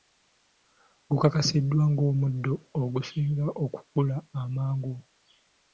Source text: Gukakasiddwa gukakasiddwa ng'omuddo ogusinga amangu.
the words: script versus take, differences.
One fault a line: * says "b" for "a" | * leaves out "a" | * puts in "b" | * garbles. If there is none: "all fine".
* leaves out "gukakasiddwa"
* puts in "okukula"